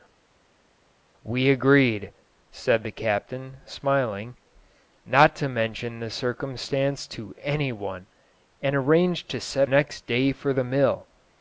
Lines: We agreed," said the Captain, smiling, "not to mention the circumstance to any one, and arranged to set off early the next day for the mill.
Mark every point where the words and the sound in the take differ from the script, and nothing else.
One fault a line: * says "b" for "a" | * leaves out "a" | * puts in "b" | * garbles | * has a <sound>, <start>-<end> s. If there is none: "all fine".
* leaves out "off early the"